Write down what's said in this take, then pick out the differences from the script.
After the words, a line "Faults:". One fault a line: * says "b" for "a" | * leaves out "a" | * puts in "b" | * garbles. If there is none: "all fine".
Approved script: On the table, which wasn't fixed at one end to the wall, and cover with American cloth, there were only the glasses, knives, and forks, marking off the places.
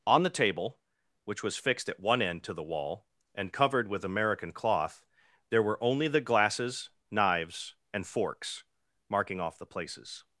On the table, which was fixed at one end to the wall, and covered with American cloth, there were only the glasses, knives, and forks, marking off the places.
Faults:
* says "was" for "wasn't"
* says "covered" for "cover"